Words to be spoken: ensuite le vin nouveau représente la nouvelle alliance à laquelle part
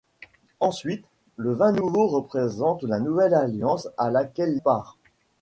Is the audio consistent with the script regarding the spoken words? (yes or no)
yes